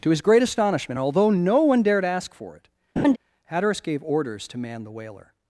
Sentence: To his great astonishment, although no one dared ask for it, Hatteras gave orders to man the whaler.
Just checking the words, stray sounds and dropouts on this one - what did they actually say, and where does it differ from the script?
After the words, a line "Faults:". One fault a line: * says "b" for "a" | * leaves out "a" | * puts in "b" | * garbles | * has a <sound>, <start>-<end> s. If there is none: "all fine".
To his great astonishment, although no one dared ask for it, Hatteras gave orders to man the whaler.
Faults:
* has a laugh, 3.0-3.2 s